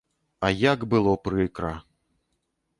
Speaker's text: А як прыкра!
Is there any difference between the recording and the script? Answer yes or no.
yes